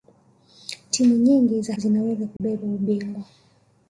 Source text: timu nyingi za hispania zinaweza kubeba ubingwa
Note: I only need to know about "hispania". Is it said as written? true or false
false